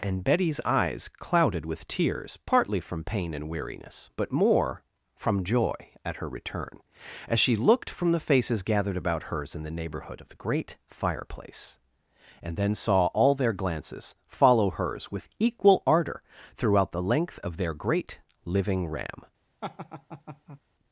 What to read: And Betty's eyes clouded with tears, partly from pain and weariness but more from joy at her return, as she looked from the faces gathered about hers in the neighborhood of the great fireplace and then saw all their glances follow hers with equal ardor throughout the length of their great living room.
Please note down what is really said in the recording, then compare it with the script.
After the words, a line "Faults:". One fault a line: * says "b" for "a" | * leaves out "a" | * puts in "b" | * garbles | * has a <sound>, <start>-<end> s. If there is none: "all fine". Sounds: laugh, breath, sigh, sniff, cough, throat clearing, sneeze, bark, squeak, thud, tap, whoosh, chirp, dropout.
And Betty's eyes clouded with tears, partly from pain and weariness but more from joy at her return, as she looked from the faces gathered about hers in the neighborhood of the great fireplace and then saw all their glances follow hers with equal ardor throughout the length of their great living ram.
Faults:
* says "ram" for "room"
* has a laugh, 19.6-20.6 s